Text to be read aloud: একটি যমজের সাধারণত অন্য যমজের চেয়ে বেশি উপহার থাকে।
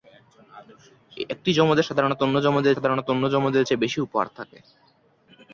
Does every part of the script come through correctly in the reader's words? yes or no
no